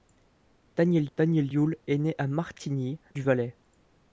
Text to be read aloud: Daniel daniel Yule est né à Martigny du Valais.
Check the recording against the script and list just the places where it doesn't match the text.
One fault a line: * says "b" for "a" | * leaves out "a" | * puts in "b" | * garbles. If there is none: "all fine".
all fine